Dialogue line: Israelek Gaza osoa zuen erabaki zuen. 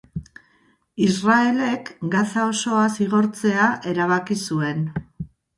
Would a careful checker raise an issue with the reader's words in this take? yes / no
yes